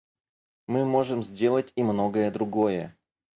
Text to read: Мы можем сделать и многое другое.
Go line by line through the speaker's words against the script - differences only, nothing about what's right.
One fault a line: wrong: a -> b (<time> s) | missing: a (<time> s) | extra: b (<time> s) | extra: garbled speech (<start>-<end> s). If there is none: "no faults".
no faults